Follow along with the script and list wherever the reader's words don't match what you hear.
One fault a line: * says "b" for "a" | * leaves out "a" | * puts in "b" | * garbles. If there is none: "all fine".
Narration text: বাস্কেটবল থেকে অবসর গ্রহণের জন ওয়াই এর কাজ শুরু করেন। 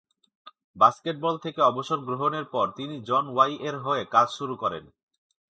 * puts in "পর তিনি"
* puts in "হয়ে"